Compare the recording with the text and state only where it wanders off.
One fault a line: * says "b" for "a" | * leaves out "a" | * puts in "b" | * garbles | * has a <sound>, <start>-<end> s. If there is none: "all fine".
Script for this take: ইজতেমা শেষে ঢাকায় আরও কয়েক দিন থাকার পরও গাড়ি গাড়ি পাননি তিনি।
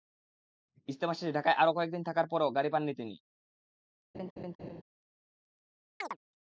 * leaves out "গাড়ি"
* has a laugh, 4.1-4.8 s
* has a chirp, 6.0-6.2 s